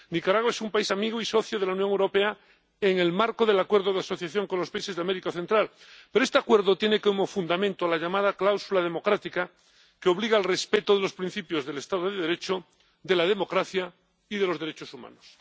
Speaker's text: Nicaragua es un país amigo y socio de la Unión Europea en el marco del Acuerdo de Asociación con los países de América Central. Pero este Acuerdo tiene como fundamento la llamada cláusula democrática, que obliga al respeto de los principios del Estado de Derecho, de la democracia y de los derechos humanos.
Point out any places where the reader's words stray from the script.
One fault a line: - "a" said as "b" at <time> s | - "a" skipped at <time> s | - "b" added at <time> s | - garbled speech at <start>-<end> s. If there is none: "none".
none